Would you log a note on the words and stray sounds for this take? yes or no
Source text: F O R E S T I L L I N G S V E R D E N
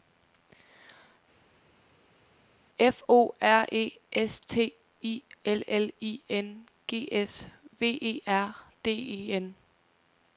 no